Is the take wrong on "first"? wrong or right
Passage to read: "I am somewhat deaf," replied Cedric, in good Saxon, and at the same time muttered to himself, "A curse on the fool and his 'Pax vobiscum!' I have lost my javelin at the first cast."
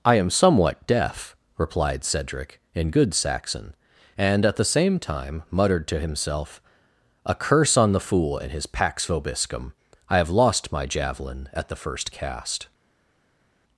right